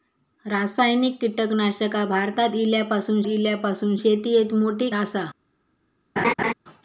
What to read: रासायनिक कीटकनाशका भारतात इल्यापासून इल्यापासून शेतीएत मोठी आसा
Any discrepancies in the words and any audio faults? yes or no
yes